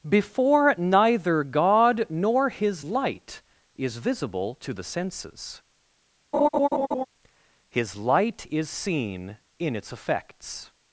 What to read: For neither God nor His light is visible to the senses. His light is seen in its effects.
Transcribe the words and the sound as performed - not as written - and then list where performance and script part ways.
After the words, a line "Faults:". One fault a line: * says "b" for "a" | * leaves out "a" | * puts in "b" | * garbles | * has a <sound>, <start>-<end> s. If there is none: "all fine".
Before neither God nor His light is visible to the senses. His light is seen in its effects.
Faults:
* says "Before" for "For"
* has a laugh, 6.3-7.1 s